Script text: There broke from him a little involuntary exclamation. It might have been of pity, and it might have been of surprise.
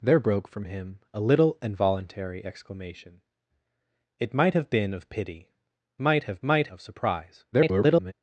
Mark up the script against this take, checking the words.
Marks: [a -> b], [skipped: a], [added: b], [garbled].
There broke from him a little involuntary exclamation. It might have been of pity, [skipped: and it] might have [been -> might] of surprise. [garbled]